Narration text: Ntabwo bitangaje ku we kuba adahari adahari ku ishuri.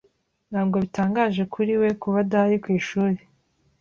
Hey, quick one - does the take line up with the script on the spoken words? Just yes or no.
no